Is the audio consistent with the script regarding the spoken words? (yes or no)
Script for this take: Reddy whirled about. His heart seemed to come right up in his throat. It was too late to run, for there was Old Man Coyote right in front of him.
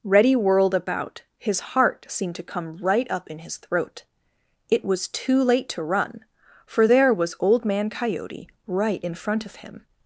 yes